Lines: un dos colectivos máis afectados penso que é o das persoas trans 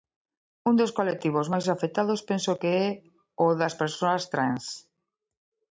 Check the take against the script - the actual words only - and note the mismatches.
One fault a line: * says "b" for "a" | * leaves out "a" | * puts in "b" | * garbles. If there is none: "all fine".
all fine